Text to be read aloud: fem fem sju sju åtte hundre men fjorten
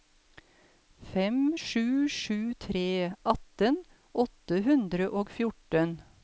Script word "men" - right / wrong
wrong